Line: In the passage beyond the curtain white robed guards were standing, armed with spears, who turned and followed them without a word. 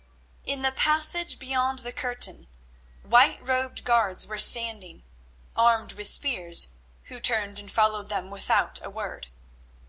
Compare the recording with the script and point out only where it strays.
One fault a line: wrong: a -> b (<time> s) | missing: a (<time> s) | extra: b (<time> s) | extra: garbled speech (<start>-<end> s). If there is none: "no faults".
no faults